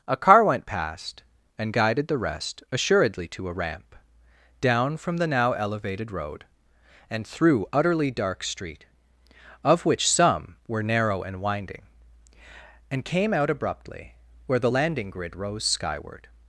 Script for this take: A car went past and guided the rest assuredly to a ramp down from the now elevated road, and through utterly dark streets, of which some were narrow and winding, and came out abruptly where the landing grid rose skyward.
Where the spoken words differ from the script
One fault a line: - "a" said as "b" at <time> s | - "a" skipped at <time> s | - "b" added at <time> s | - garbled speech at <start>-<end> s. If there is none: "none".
- "streets" said as "street" at 8.4 s